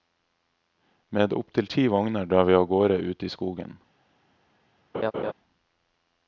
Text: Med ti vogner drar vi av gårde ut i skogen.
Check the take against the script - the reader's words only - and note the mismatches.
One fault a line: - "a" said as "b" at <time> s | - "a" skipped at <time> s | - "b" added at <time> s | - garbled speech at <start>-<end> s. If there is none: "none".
- "opptil" added at 1.3 s